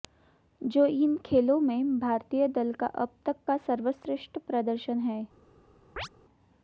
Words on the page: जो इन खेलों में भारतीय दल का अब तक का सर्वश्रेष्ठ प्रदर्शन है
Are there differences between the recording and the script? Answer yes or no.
no